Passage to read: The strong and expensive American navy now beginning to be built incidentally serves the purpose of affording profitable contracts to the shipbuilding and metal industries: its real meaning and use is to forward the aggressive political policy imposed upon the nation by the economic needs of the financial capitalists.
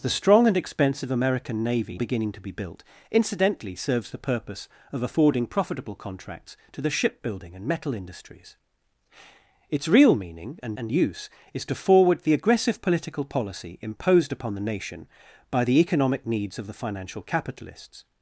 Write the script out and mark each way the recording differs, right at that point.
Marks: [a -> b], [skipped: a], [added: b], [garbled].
The strong and expensive American navy [skipped: now] beginning to be built incidentally serves the purpose of affording profitable contracts to the shipbuilding and metal industries: its real meaning and [added: and] use is to forward the aggressive political policy imposed upon the nation by the economic needs of the financial capitalists.